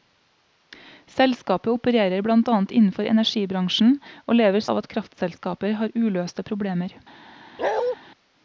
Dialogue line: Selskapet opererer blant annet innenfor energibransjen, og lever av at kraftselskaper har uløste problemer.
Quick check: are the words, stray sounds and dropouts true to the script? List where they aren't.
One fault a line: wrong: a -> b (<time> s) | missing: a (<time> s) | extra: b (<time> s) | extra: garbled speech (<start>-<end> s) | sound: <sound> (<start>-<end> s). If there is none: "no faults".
sound: bark (7.6-8.0 s)